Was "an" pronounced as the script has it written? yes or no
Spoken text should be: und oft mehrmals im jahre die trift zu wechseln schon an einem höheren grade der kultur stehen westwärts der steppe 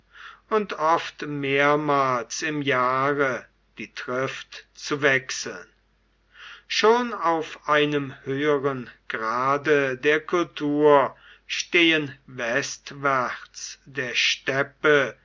no